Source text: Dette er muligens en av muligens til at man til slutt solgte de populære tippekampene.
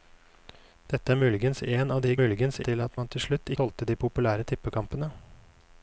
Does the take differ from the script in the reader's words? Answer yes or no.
no